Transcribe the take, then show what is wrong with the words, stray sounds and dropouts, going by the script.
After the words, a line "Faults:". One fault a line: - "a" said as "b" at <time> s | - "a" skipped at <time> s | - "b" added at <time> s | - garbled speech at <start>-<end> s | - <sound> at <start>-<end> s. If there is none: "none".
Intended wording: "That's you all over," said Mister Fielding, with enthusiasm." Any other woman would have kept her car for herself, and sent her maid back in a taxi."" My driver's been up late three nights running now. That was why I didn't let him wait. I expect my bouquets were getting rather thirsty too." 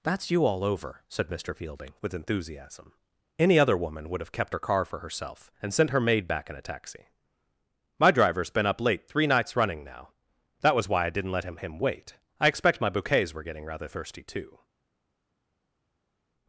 "That's you all over," said Mister Fielding, with enthusiasm." Any other woman would have kept her car for herself, and sent her maid back in a taxi."" My driver's been up late three nights running now. That was why I didn't let him him wait. I expect my bouquets were getting rather thirsty too."
Faults:
- "him" added at 11.6 s